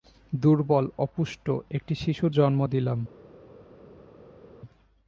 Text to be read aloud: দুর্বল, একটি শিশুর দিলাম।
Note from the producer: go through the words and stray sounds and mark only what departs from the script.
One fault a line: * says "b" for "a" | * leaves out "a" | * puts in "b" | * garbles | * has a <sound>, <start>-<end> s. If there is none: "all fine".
* puts in "অপুষ্ট"
* puts in "জন্ম"